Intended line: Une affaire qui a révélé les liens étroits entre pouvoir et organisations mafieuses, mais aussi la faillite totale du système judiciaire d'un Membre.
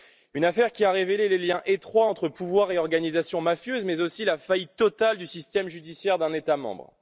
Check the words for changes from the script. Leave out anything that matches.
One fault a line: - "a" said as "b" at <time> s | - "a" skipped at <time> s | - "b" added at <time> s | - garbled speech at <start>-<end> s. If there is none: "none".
- "État" added at 6.3 s